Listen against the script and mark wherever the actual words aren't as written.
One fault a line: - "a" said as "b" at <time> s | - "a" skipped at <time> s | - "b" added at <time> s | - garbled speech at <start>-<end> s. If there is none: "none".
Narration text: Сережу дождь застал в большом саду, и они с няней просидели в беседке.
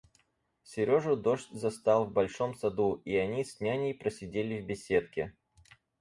none